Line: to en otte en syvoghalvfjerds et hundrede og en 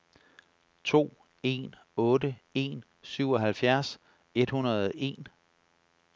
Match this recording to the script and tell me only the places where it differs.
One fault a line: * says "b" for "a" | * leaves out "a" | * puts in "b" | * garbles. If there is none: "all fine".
all fine